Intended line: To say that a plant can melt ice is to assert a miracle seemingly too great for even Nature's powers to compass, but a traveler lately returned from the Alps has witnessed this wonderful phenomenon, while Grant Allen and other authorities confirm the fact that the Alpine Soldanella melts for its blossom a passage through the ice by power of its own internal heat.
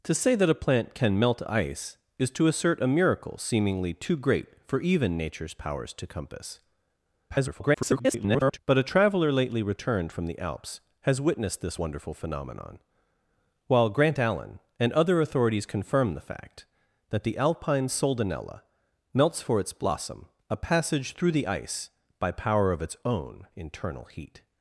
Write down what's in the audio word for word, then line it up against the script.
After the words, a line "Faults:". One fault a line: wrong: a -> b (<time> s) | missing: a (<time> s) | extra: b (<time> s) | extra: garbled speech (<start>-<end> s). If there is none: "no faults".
To say that a plant can melt ice is to assert a miracle seemingly too great for even Nature's powers to compass, [garbled] but a traveler lately returned from the Alps has witnessed this wonderful phenomenon, while Grant Allen and other authorities confirm the fact that the Alpine Soldanella melts for its blossom a passage through the ice by power of its own internal heat.
Faults:
extra: garbled speech (7.3-8.6 s)